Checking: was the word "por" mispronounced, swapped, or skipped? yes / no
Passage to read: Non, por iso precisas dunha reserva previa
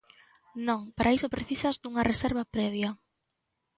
yes